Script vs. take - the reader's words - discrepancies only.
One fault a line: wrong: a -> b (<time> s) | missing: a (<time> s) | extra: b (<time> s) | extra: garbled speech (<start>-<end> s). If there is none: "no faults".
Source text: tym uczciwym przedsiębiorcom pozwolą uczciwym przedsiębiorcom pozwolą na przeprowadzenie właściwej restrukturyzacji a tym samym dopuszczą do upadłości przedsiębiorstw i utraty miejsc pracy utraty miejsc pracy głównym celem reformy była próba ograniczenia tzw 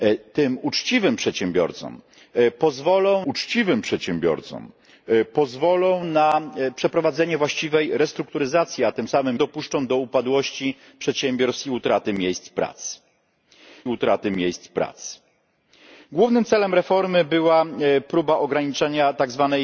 no faults